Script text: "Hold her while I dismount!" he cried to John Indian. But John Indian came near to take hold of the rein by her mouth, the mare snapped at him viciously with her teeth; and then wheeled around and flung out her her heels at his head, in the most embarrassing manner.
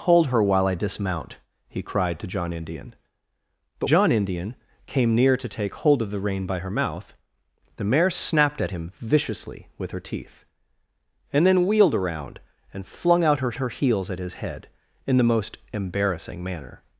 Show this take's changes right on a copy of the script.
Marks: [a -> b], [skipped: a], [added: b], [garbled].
"Hold her while I dismount!" he cried to John Indian. But John Indian came near to take hold of the rein by her mouth, the mare snapped at him viciously with her teeth; and then wheeled around and flung out her her heels at his head, in the most embarrassing manner.